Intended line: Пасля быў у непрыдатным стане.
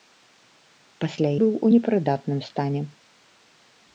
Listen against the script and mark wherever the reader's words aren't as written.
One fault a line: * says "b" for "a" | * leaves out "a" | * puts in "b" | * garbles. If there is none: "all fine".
all fine